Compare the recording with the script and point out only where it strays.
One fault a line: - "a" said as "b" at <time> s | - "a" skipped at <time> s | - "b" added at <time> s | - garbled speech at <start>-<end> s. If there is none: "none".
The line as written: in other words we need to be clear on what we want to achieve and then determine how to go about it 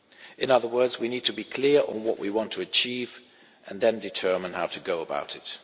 none